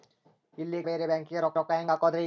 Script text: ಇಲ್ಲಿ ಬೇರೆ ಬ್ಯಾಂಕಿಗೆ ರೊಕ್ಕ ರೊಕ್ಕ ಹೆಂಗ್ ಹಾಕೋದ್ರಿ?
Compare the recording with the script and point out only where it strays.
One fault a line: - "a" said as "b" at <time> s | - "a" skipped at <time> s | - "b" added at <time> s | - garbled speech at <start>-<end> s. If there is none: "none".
none